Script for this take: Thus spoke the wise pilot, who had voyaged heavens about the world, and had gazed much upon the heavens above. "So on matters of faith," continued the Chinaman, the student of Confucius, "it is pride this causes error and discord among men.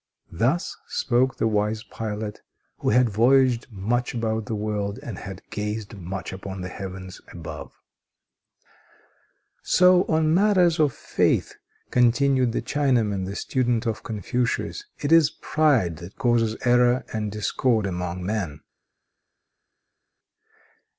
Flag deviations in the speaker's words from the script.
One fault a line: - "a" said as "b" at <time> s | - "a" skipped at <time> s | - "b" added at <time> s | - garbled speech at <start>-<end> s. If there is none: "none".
- "heavens" said as "much" at 3.7 s
- "this" said as "that" at 16.0 s